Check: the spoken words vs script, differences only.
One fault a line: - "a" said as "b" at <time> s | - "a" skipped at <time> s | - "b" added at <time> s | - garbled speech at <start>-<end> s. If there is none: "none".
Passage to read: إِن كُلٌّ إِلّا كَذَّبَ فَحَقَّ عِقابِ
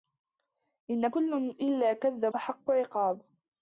none